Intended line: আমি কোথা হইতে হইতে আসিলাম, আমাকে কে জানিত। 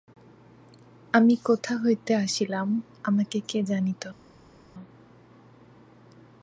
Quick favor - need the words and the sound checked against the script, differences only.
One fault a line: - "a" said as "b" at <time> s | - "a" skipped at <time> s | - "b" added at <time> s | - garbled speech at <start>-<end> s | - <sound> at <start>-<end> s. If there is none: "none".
- "হইতে" skipped at 2.1 s